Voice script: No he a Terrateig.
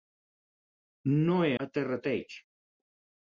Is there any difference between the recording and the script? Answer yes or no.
no